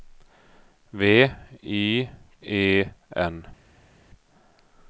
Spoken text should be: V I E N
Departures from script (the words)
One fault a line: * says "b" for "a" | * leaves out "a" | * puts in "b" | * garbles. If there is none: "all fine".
all fine